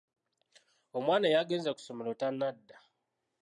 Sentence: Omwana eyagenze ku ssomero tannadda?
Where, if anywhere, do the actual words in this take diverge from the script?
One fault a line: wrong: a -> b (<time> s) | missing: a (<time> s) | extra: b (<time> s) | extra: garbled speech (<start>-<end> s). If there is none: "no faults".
no faults